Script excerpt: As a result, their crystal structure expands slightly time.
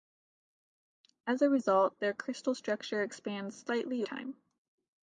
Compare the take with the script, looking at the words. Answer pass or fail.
pass